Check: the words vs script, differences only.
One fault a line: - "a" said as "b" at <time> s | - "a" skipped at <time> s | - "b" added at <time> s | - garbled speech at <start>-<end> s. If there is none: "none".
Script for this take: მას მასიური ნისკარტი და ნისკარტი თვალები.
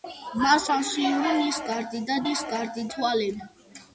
none